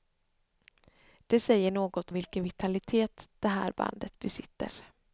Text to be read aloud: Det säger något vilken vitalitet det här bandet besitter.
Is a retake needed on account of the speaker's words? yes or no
no